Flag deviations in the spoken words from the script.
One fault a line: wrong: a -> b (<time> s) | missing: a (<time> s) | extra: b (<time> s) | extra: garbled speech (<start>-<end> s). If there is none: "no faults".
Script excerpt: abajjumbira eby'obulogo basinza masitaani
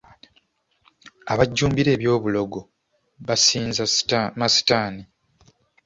no faults